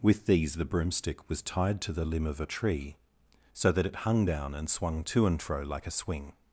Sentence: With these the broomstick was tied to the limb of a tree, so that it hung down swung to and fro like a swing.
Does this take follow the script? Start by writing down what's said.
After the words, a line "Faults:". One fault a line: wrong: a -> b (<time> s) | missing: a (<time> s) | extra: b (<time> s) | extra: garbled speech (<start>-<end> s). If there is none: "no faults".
With these the broomstick was tied to the limb of a tree, so that it hung down and swung to and fro like a swing.
Faults:
extra: and (4.5 s)